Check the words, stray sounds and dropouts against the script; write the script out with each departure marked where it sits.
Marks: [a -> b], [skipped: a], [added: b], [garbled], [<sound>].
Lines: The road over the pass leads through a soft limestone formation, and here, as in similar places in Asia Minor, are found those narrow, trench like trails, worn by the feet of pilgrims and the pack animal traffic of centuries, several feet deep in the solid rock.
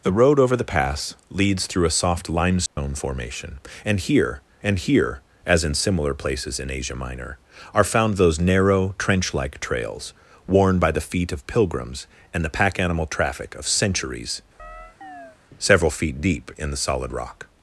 The road over the pass leads through a soft limestone [dropout] formation, and here, [added: and here] as in similar places in Asia Minor, are found those narrow, trench like trails, worn by the feet of pilgrims and the pack animal traffic of centuries, [chirp] several feet deep in the solid rock.